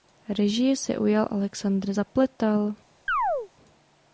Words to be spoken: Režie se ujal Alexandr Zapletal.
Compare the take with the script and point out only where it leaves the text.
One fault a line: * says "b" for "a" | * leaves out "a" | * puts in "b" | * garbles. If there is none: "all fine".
all fine